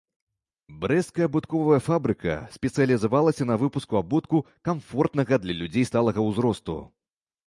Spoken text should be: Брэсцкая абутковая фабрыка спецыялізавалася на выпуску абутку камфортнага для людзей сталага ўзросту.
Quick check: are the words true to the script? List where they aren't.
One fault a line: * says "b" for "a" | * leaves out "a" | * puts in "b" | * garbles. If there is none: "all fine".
all fine